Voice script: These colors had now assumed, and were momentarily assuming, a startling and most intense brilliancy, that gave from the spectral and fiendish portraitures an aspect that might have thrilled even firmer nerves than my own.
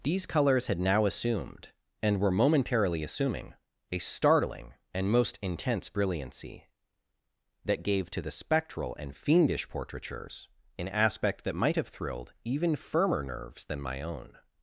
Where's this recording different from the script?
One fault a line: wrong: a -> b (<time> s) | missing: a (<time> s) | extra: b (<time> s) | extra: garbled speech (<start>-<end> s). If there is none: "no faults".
wrong: from -> to (8.1 s)